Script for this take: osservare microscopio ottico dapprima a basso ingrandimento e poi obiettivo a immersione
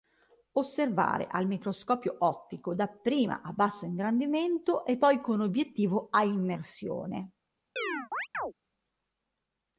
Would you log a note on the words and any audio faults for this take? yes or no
yes